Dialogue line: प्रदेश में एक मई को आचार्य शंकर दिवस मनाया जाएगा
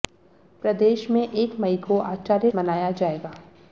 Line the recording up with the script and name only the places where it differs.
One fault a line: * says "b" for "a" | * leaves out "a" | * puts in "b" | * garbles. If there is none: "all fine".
* leaves out "शंकर दिवस"